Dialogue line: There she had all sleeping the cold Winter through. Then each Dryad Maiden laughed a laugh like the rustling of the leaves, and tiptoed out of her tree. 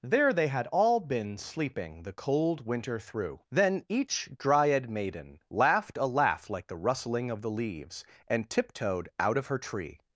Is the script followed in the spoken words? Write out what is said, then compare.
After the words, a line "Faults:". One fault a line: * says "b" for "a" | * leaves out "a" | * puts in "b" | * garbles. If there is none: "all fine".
There they had all been sleeping the cold Winter through. Then each Dryad Maiden laughed a laugh like the rustling of the leaves, and tiptoed out of her tree.
Faults:
* says "they" for "she"
* puts in "been"